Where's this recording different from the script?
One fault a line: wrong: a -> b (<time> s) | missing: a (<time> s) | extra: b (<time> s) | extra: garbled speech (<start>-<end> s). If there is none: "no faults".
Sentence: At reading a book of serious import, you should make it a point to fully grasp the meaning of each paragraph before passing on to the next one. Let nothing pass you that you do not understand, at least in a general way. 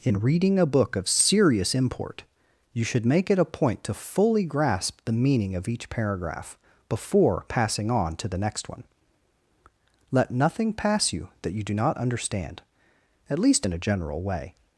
wrong: At -> In (0.0 s)